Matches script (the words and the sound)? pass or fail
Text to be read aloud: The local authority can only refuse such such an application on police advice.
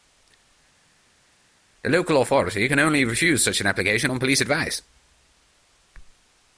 fail